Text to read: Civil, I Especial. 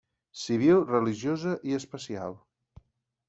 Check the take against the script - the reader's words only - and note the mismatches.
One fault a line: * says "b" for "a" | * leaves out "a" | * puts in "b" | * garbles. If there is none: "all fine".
* puts in "Religiosa"